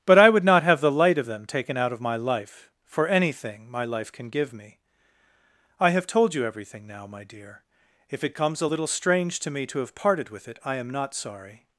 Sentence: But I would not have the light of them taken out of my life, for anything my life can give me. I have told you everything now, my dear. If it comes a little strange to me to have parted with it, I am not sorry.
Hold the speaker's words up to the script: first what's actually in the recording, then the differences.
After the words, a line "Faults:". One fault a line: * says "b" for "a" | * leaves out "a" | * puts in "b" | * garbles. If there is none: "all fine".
But I would not have the light of them taken out of my life, for anything my life can give me. I have told you everything now, my dear. If it comes a little strange to me to have parted with it, I am not sorry.
Faults:
all fine